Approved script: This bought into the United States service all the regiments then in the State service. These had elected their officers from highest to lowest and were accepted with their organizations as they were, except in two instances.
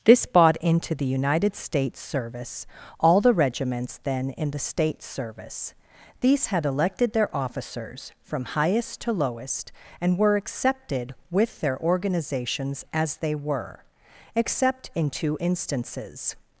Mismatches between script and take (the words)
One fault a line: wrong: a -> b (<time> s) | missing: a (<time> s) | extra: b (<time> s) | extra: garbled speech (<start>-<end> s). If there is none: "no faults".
no faults